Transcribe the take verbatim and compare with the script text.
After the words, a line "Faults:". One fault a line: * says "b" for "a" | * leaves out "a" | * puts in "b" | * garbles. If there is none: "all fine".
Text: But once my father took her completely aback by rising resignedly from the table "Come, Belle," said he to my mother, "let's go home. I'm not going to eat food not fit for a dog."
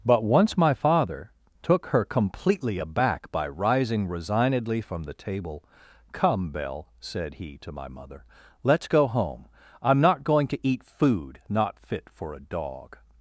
But once my father took her completely aback by rising resignedly from the table "Come, Belle," said he to my mother, "let's go home. I'm not going to eat food not fit for a dog."
Faults:
all fine